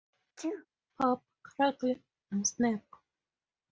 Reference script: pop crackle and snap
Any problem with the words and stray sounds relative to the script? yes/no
yes